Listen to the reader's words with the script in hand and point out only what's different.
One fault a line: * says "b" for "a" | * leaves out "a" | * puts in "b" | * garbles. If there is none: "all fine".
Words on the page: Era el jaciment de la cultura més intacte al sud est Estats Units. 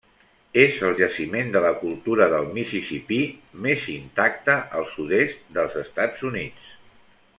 * says "És" for "Era"
* puts in "del Mississipí"
* puts in "dels"